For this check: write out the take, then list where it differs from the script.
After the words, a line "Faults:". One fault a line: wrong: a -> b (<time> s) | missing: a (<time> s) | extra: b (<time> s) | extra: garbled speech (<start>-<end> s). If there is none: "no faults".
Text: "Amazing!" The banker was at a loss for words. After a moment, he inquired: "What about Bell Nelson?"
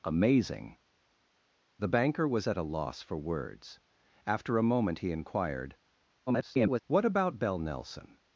"Amazing!" The banker was at a loss for words. After a moment, he inquired: [garbled] "What about Bell Nelson?"
Faults:
extra: garbled speech (6.3-6.8 s)